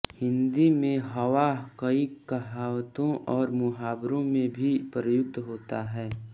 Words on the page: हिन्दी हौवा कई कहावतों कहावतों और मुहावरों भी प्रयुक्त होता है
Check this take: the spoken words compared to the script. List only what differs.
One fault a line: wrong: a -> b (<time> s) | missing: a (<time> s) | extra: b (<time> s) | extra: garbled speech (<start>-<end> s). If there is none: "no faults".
extra: में (0.7 s)
missing: कहावतों (3.1 s)
extra: में (4.2 s)